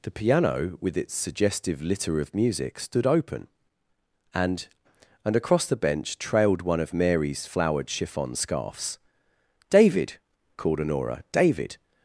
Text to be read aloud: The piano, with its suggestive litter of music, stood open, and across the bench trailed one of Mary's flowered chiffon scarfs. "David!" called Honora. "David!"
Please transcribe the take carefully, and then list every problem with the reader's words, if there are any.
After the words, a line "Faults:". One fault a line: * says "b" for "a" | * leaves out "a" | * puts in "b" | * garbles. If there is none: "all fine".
The piano, with its suggestive litter of music, stood open, and and across the bench trailed one of Mary's flowered chiffon scarfs. "David!" called Honora. "David!"
Faults:
* puts in "and"